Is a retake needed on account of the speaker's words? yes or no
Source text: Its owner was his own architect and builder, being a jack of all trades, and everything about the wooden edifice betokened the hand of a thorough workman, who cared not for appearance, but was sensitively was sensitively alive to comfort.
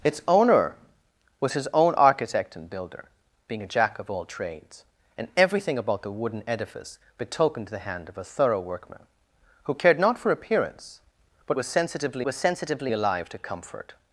no